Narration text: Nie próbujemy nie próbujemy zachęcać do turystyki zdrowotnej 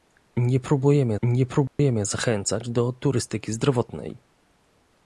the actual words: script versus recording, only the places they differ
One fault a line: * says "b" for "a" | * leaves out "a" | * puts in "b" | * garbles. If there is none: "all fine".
all fine